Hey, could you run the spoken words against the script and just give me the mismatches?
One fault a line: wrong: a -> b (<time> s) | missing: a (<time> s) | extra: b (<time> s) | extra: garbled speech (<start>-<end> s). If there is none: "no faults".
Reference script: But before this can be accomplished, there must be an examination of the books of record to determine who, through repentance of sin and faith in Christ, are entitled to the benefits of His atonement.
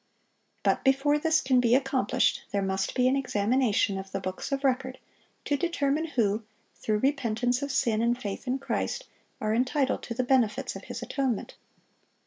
no faults